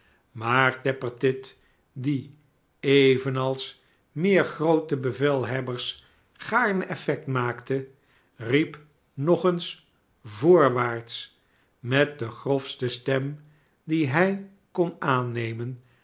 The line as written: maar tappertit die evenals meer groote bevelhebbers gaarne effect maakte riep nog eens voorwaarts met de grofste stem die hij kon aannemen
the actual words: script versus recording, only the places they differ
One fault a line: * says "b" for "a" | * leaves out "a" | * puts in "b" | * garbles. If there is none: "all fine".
all fine